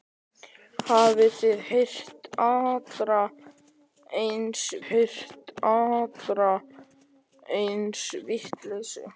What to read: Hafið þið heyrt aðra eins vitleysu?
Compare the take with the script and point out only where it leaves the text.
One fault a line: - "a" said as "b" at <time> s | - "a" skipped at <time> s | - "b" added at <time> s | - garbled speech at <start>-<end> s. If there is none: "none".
- "heyrt aðra eins" added at 4.9 s